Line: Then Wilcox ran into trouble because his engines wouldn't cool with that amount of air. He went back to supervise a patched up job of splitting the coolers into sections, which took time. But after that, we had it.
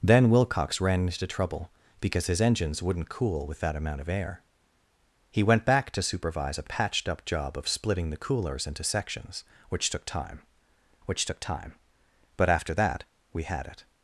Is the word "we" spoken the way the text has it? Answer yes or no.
yes